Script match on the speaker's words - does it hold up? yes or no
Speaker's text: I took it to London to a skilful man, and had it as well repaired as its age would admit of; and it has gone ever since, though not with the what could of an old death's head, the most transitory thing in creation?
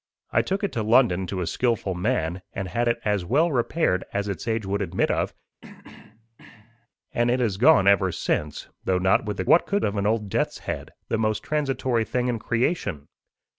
yes